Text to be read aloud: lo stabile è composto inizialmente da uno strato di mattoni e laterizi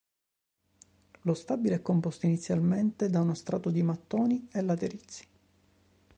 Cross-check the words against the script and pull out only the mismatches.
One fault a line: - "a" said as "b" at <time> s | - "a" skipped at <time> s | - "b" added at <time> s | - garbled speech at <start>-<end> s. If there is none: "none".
none